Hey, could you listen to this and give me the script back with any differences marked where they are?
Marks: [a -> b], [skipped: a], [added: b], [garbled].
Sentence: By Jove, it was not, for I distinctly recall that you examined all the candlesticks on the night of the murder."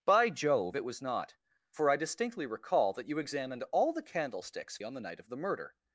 By Jove, it was not, for I distinctly recall that you examined all the candlesticks on the night of the murder."